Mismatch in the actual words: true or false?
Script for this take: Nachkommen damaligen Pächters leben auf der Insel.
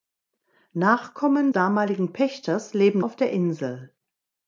false